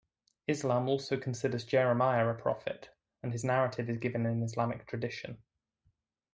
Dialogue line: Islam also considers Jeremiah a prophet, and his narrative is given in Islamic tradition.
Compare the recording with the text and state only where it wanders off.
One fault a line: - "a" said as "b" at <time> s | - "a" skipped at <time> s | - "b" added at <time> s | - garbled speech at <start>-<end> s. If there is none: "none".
none